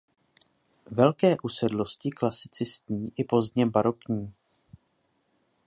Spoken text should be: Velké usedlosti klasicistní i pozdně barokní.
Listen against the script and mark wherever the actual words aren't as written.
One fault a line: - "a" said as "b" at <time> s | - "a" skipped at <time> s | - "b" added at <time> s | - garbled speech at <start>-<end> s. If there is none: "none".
none